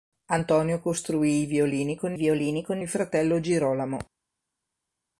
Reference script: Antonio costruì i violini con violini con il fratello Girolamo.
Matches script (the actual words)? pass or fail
pass